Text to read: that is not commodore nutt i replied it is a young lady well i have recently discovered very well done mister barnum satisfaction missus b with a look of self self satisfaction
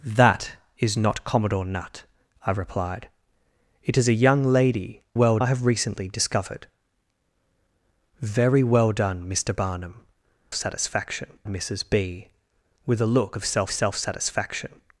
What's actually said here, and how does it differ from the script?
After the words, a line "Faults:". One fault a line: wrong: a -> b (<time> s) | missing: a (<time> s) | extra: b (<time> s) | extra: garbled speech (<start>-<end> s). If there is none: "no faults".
that is not commodore nutt i replied it is a young lady well i have recently discovered very well done mister barnum satisfaction missus b with a look of self self satisfaction
Faults:
no faults